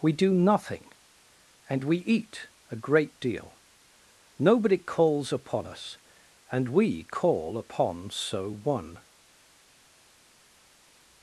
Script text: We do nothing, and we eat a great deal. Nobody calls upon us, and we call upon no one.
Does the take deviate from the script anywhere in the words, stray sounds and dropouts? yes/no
yes